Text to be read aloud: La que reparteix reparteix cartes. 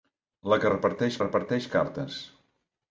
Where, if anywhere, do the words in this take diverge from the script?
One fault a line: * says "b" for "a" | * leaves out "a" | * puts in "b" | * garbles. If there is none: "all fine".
all fine